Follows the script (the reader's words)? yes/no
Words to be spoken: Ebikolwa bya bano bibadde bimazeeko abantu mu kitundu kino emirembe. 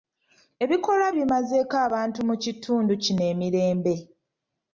no